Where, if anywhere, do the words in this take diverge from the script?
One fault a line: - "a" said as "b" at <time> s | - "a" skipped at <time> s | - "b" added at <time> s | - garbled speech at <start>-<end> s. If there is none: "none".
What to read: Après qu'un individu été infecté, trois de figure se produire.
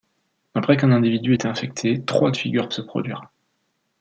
none